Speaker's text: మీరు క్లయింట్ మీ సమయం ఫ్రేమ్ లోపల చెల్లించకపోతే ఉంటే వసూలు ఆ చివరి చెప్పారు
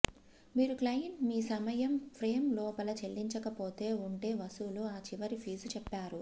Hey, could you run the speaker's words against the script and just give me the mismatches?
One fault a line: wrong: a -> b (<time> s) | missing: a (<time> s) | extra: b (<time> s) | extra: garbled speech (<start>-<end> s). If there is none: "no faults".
extra: ఫీజు (5.4 s)